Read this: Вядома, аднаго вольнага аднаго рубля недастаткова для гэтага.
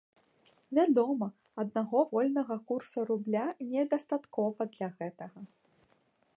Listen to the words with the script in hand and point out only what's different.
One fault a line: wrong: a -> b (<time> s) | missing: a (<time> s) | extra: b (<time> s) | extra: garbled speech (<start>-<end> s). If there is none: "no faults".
wrong: аднаго -> курса (2.7 s)